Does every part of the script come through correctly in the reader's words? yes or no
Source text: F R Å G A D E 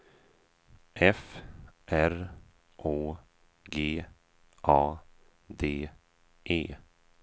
yes